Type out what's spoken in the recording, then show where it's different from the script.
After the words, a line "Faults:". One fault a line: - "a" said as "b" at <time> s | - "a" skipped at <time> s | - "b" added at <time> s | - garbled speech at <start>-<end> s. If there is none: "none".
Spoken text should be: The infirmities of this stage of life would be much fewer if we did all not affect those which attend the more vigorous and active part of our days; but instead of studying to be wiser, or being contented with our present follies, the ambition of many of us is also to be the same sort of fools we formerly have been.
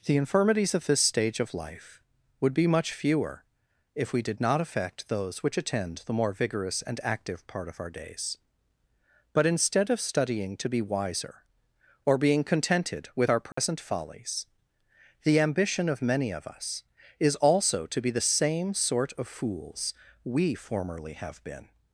The infirmities of this stage of life would be much fewer if we did not affect those which attend the more vigorous and active part of our days; but instead of studying to be wiser, or being contented with our present follies, the ambition of many of us is also to be the same sort of fools we formerly have been.
Faults:
- "all" skipped at 4.4 s